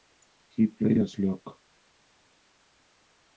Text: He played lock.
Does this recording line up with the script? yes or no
no